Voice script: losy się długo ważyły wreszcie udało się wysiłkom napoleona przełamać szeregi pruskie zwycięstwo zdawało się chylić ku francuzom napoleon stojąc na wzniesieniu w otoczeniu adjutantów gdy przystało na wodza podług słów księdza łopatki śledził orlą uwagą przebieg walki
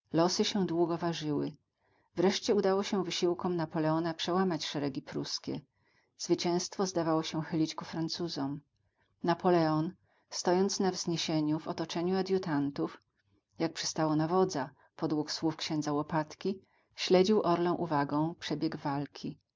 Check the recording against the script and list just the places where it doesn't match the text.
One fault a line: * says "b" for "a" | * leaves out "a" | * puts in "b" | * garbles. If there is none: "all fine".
* says "jak" for "gdy"